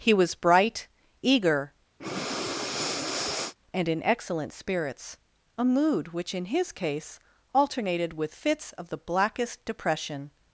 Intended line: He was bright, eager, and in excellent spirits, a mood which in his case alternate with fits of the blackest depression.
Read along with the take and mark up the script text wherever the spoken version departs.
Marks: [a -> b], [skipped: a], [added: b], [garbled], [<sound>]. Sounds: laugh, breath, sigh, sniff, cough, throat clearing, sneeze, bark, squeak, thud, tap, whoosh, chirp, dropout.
He was bright, eager, [breath] and in excellent spirits, a mood which in his case [alternate -> alternated] with fits of the blackest depression.